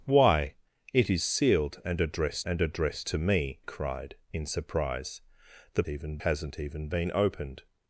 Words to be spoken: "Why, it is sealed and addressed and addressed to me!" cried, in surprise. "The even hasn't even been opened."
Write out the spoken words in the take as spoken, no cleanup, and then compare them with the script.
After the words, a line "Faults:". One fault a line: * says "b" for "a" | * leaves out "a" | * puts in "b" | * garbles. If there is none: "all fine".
"Why, it is sealed and addressed and addressed to me!" cried, in surprise. "The even hasn't even been opened."
Faults:
all fine